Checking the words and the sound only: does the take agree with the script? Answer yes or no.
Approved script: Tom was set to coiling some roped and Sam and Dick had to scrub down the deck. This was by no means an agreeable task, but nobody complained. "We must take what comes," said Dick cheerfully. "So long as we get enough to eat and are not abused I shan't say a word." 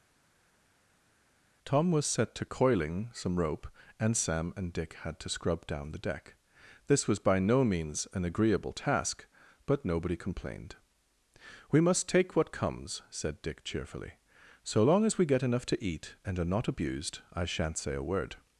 no